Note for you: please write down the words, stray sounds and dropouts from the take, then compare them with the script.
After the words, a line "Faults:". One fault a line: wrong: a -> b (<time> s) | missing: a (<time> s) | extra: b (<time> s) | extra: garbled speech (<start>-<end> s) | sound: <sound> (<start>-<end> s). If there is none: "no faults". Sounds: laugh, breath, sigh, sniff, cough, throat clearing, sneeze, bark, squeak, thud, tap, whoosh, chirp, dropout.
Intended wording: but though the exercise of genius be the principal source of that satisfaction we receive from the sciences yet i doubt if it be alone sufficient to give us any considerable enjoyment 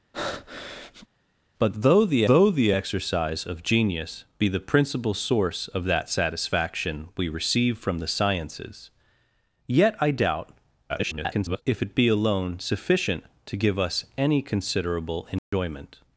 but though the though the exercise of genius be the principal source of that satisfaction we receive from the sciences yet i doubt [garbled] if it be alone sufficient to give us any considerable enjoyment
Faults:
sound: breath (0.1-1.1 s)
extra: though the (2.3 s)
extra: garbled speech (10.9-11.6 s)
sound: dropout (15.4-15.5 s)